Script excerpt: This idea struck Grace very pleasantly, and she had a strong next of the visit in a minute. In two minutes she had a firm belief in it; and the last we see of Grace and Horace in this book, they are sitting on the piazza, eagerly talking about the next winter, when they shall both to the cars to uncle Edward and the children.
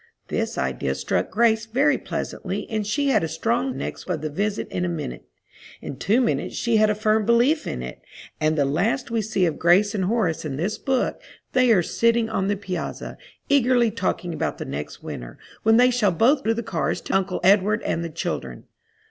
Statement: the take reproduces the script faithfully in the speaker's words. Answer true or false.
true